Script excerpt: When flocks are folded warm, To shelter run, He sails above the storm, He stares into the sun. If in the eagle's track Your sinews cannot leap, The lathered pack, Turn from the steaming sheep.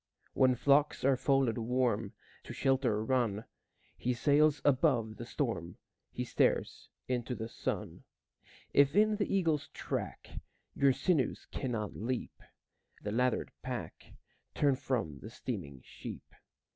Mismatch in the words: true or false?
false